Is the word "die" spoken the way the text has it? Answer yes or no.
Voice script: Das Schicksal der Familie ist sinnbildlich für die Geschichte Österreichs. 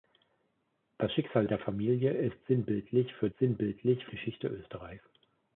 no